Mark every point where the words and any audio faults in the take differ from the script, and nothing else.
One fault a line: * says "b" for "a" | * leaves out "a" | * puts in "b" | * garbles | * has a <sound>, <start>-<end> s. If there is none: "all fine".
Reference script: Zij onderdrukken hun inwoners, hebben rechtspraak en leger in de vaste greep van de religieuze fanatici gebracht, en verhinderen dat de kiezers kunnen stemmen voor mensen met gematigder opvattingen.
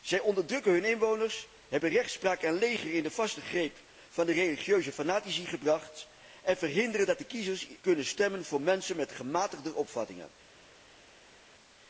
all fine